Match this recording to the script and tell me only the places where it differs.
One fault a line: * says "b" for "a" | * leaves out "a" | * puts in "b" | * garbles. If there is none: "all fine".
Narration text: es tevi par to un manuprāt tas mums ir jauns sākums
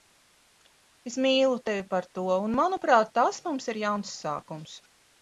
* puts in "mīlu"